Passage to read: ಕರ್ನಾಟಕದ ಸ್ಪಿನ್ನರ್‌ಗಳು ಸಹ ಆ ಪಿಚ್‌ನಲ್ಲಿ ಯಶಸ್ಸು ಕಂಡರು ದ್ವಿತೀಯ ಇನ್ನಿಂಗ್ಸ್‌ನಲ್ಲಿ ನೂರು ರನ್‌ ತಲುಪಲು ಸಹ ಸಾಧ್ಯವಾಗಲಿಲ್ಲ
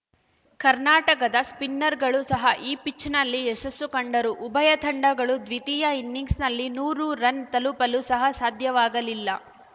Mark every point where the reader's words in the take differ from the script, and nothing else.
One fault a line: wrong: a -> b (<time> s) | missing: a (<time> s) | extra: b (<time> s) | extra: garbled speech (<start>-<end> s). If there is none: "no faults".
wrong: ಆ -> ಈ (2.6 s)
extra: ಉಭಯ ತಂಡಗಳು (4.5 s)